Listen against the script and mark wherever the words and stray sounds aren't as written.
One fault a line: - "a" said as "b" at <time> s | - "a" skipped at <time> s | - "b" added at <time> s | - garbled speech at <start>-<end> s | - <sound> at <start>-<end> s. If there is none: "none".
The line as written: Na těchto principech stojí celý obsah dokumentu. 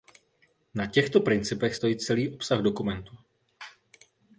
none